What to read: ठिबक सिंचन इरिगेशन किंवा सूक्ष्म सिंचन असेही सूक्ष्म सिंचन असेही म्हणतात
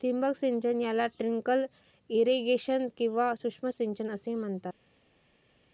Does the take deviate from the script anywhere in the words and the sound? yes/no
yes